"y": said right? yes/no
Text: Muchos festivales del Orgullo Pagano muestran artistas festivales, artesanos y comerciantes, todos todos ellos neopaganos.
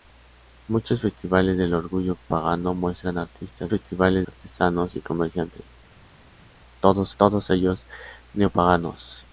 yes